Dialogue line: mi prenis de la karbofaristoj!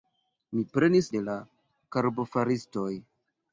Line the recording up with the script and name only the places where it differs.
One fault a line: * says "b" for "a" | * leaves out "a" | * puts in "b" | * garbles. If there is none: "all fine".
all fine